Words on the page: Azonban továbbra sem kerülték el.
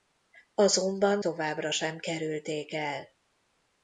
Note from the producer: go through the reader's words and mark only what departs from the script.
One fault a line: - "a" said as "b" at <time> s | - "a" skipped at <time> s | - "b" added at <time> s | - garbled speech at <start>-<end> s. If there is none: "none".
none